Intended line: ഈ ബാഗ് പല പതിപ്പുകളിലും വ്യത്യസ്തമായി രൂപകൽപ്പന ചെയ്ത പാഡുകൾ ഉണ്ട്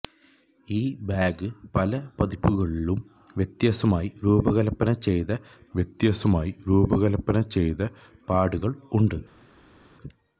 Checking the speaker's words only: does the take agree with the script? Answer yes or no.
no